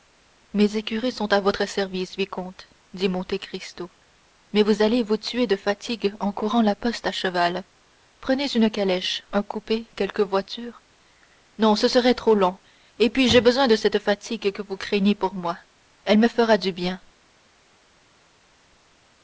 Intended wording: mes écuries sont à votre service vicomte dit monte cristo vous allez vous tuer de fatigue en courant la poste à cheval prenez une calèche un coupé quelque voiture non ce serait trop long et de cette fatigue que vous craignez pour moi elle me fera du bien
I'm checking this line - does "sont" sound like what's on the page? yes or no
yes